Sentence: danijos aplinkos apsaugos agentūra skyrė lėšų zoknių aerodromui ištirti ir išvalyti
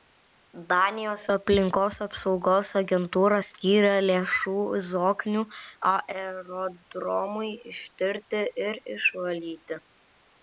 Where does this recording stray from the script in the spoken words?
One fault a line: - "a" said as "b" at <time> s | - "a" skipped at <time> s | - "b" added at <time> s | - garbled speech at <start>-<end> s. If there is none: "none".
none